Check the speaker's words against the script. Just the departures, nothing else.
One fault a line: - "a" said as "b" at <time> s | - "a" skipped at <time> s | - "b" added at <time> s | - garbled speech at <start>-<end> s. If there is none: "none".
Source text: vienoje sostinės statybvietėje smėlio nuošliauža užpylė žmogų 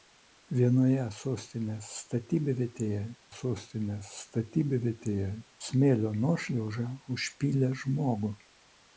- "sostinės statybvietėje" added at 3.3 s